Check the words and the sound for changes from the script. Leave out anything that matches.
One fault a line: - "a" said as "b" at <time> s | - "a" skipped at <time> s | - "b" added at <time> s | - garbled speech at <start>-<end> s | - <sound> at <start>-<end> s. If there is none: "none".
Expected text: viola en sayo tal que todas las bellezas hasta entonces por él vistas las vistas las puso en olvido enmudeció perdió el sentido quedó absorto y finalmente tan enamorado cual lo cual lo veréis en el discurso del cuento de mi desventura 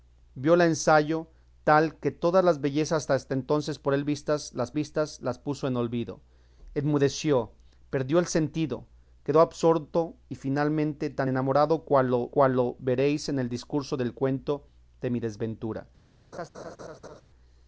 - laugh at 16.3-17.2 s